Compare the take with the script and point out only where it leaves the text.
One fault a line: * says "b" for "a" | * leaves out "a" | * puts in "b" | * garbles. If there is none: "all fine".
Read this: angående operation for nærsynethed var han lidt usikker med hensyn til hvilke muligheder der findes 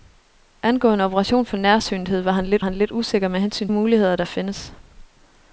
* puts in "han lidt"
* leaves out "til hvilke"